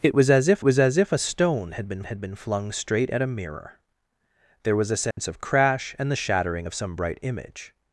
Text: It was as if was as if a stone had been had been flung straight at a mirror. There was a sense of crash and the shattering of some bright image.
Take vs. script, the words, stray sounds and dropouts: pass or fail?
fail